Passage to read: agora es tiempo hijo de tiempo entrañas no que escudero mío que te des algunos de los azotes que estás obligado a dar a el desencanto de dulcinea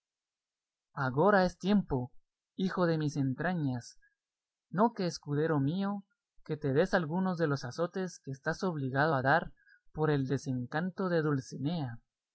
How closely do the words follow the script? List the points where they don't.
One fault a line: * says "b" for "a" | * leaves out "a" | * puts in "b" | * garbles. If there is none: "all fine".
* says "mis" for "tiempo"
* says "por" for "a"